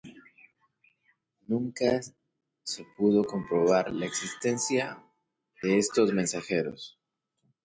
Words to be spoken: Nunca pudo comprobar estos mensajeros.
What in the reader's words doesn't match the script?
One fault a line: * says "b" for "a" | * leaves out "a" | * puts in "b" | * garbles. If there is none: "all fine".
* puts in "se"
* puts in "la existencia de"